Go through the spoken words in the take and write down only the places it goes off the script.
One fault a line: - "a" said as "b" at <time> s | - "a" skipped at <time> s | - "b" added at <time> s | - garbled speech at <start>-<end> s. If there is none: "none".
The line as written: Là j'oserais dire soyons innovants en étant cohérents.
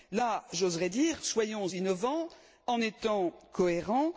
none